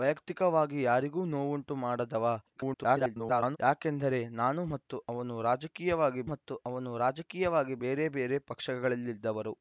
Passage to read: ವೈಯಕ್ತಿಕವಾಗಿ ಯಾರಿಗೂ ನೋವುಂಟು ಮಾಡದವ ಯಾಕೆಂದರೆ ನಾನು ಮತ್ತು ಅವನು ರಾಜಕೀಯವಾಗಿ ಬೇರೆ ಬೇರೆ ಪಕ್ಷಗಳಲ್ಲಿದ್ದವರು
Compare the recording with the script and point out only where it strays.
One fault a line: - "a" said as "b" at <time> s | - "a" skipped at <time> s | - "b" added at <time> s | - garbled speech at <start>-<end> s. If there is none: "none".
- garbled speech at 2.6-3.6 s
- "ಮತ್ತು ಅವನು ರಾಜಕೀಯವಾಗಿ" added at 6.3 s